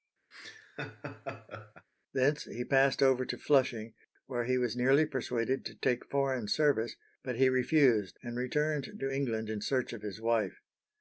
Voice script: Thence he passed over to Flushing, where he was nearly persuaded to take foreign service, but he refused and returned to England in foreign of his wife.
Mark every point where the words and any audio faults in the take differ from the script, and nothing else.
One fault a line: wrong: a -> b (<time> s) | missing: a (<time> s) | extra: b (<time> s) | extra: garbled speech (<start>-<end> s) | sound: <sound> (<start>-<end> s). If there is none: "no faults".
sound: laugh (0.3-1.9 s)
wrong: foreign -> search (9.6 s)